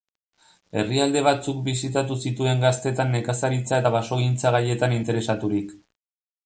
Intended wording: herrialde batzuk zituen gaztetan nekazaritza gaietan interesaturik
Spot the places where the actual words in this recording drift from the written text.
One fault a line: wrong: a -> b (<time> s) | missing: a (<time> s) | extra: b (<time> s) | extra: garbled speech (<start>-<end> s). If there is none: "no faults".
extra: bisitatu (1.7 s)
extra: eta basogintza (3.8 s)